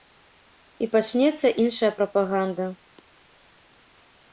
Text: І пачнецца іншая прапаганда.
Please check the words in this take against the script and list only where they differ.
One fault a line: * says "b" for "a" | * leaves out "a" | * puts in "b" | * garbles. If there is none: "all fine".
all fine